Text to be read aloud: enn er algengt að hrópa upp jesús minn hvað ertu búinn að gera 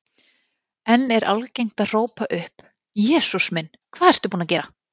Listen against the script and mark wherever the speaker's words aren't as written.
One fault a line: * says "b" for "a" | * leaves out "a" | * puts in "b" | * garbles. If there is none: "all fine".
all fine